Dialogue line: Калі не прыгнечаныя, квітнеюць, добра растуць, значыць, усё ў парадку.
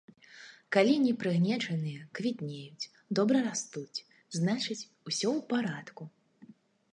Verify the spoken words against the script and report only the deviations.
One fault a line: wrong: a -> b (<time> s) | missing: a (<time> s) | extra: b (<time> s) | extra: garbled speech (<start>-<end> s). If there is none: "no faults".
no faults